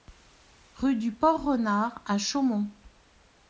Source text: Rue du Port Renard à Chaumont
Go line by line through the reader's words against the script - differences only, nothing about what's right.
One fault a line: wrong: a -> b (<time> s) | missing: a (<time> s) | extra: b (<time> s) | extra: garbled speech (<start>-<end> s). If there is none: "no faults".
no faults